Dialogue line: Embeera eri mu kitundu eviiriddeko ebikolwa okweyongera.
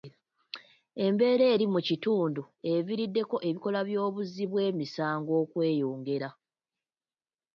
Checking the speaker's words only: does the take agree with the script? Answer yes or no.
no